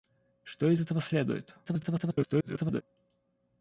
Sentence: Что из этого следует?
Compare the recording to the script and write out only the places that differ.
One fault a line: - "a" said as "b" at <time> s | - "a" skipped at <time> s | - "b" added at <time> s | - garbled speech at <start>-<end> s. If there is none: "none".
- garbled speech at 1.6-2.8 s